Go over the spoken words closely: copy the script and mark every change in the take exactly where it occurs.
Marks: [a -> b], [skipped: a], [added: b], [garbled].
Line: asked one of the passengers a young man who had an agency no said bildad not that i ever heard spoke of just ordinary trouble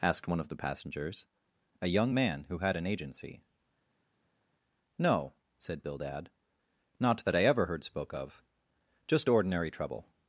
asked one of the passengers a young man who had an agency no said bildad not that i ever heard spoke of just ordinary trouble